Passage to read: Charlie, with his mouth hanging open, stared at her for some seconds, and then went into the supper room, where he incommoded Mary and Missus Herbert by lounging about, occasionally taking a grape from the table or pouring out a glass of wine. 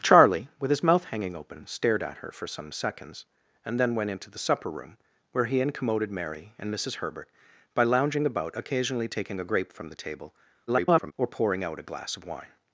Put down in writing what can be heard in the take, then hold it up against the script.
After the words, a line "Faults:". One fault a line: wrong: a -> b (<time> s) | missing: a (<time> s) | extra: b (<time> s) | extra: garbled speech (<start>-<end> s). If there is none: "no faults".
Charlie, with his mouth hanging open, stared at her for some seconds, and then went into the supper room, where he incommoded Mary and Missus Herbert by lounging about, occasionally taking a grape from the table [garbled] or pouring out a glass of wine.
Faults:
extra: garbled speech (10.7-11.1 s)